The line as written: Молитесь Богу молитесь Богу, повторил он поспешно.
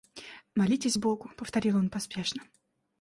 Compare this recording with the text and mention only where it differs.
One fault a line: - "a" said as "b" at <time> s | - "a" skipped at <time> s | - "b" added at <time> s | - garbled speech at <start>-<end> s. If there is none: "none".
- "молитесь Богу" skipped at 1.3 s